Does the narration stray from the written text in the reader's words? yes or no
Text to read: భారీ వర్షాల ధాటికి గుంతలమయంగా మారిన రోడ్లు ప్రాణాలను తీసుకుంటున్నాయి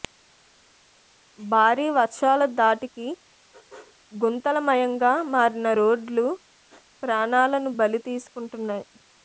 yes